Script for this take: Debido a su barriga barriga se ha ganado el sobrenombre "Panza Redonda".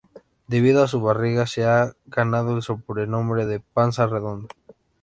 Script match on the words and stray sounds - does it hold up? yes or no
no